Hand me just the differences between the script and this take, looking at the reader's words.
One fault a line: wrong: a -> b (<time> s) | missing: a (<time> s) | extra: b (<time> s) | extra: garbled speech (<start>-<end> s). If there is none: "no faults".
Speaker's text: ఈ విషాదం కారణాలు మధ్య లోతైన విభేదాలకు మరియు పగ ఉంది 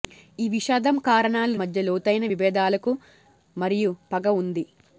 no faults